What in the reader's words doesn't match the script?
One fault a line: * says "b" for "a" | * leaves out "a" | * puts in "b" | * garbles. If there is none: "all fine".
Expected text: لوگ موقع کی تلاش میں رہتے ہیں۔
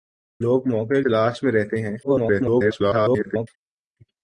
* leaves out "کی"
* garbles